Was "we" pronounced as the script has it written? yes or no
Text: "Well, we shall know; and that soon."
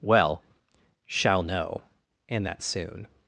no